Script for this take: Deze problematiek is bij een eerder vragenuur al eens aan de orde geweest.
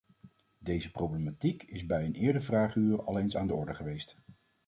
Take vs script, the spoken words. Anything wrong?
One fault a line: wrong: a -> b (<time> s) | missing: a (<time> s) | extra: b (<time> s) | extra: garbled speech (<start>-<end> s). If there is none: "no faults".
no faults